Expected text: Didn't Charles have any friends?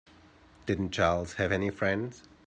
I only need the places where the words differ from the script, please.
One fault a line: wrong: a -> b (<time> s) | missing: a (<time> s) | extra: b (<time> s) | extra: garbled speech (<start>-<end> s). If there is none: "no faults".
no faults